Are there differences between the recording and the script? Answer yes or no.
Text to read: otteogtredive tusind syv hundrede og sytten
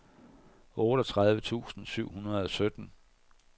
no